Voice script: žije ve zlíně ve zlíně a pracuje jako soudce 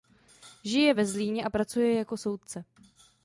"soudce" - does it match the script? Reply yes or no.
yes